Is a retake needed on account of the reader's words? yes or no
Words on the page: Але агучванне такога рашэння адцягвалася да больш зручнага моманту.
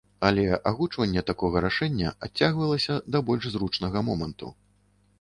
no